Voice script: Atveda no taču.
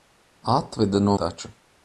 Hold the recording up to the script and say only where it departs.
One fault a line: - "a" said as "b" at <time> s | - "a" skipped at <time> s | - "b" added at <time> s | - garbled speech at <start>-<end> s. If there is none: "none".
none